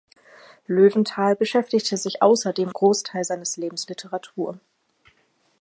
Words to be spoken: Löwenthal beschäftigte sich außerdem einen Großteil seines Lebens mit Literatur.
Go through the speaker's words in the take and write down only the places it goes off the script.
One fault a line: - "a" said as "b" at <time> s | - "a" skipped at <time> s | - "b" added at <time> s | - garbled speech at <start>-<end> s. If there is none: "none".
- "einen" skipped at 2.7 s
- "mit" skipped at 3.9 s